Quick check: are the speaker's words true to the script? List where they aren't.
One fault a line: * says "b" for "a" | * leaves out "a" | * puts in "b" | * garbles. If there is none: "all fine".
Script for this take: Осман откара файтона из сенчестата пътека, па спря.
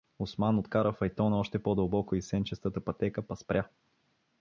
* puts in "още по дълбоко"